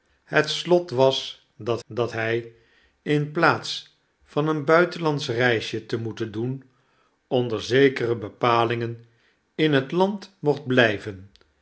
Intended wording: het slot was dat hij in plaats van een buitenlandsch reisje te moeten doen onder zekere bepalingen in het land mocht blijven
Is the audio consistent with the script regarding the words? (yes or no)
no